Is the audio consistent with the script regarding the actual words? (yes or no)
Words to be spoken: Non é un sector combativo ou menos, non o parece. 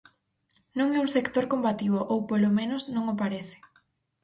no